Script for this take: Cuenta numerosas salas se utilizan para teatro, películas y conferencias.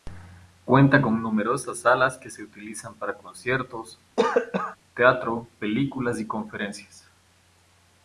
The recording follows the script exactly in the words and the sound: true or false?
false